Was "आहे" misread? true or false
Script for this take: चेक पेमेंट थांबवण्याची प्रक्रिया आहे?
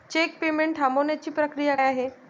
false